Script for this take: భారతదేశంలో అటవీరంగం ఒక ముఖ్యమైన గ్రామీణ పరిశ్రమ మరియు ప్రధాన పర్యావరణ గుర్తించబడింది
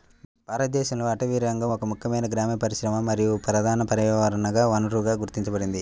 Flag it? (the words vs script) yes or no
yes